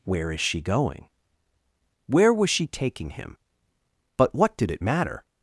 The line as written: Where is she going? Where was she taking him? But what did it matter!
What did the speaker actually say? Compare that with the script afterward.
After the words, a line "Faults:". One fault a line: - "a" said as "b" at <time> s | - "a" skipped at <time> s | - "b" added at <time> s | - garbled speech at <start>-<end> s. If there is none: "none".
Where is she going? Where was she taking him? But what did it matter!
Faults:
none